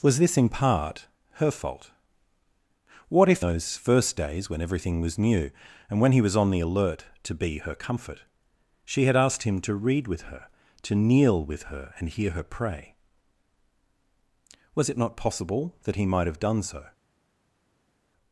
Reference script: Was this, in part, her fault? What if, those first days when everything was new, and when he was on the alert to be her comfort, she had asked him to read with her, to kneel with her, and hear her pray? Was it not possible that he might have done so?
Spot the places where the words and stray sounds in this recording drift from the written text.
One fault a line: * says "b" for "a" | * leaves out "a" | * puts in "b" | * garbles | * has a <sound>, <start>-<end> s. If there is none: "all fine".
all fine